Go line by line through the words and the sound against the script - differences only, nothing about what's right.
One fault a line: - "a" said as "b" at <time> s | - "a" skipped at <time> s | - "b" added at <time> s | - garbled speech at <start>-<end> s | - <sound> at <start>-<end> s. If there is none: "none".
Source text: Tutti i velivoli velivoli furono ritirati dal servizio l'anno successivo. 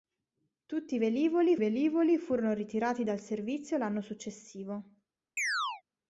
- chirp at 5.4-5.8 s